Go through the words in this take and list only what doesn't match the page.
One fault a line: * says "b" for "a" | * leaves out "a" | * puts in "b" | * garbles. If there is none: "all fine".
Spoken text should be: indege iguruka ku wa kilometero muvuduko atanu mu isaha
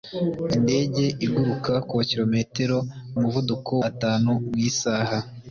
all fine